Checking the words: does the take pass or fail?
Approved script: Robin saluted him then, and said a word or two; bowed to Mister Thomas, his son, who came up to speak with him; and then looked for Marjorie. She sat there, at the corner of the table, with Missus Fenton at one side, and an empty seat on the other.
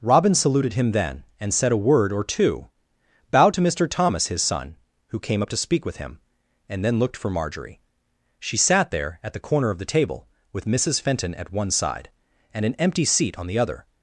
pass